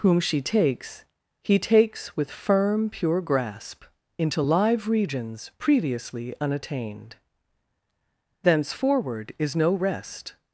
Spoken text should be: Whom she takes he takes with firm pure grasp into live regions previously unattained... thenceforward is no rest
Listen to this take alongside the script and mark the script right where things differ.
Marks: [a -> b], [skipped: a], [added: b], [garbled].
Whom she takes he takes with firm pure grasp into live regions previously unattained... thenceforward is no rest